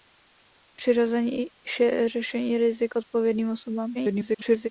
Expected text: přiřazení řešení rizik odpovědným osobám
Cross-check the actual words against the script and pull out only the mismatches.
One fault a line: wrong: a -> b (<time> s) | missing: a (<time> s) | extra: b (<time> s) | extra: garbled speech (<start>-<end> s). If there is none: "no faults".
extra: garbled speech (3.9-4.7 s)